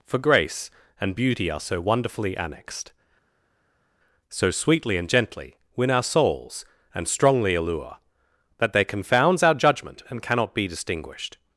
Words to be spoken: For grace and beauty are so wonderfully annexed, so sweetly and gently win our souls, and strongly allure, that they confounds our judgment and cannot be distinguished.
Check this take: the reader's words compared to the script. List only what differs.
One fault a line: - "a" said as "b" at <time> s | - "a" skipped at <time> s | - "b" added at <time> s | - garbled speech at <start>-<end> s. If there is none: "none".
none